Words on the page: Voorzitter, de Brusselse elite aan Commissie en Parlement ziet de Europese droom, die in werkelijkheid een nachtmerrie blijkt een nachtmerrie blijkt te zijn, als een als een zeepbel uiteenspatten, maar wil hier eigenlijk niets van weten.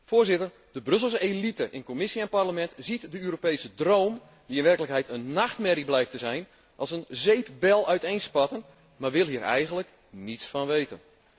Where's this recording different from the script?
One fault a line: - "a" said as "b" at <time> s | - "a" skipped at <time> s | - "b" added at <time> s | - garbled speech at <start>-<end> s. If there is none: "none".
- "aan" said as "in" at 1.7 s
- "een nachtmerrie blijkt" skipped at 6.1 s
- "als een" skipped at 7.0 s